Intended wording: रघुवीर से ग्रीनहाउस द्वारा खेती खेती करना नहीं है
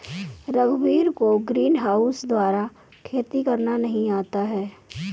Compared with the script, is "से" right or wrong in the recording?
wrong